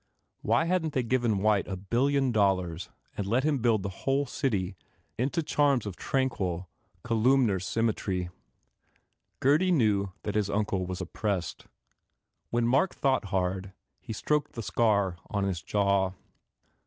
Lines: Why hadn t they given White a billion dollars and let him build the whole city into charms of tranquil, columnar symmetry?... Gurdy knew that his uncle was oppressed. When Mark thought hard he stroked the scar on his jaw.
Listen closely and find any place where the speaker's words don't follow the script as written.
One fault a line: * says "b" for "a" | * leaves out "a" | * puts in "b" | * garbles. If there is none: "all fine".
all fine